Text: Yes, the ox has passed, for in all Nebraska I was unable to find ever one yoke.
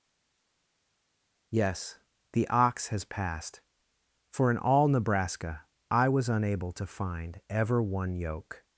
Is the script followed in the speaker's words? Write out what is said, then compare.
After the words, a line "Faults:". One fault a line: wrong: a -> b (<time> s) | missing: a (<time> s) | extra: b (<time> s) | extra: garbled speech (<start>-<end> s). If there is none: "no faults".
Yes, the ox has passed, for in all Nebraska I was unable to find ever one yoke.
Faults:
no faults